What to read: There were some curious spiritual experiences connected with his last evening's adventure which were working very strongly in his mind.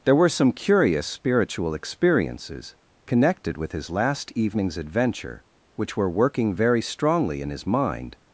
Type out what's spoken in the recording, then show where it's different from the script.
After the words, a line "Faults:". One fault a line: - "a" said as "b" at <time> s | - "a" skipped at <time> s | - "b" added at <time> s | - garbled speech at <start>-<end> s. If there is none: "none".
There were some curious spiritual experiences connected with his last evening's adventure which were working very strongly in his mind.
Faults:
none